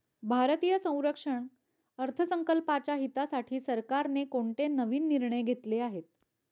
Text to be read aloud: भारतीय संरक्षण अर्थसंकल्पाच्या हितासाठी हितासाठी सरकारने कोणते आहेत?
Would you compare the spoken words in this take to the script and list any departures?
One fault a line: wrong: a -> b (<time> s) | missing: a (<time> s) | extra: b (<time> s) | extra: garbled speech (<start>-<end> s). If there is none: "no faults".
missing: हितासाठी (3.6 s)
extra: नवीन निर्णय घेतले (4.7 s)